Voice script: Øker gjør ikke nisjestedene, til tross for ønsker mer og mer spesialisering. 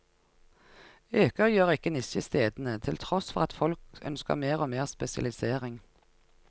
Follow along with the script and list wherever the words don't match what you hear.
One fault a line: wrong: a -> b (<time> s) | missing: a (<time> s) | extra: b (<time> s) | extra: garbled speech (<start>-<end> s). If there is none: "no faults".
extra: at folk (3.4 s)